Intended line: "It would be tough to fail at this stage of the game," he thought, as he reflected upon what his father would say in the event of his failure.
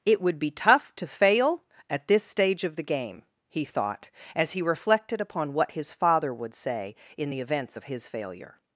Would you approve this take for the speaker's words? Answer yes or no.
no